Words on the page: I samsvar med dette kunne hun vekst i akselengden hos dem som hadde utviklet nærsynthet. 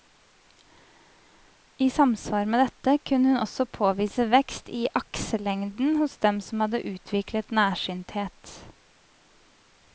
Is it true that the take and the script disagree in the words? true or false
true